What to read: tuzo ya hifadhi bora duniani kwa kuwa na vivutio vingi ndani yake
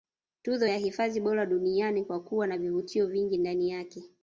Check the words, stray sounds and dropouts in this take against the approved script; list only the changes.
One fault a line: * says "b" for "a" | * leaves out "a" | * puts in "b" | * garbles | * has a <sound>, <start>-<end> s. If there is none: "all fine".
all fine